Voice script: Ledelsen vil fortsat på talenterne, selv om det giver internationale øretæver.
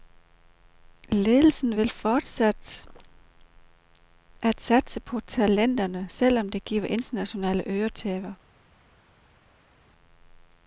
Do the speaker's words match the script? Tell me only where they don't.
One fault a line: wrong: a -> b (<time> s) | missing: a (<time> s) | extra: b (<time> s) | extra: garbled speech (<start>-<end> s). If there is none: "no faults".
extra: at satse (4.4 s)